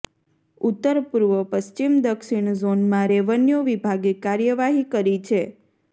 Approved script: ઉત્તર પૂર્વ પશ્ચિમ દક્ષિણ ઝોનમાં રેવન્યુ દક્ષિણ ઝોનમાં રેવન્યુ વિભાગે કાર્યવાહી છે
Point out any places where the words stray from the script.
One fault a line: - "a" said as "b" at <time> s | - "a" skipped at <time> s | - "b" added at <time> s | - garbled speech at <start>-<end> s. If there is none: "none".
- "દક્ષિણ ઝોનમાં રેવન્યુ" skipped at 3.6 s
- "કરી" added at 4.9 s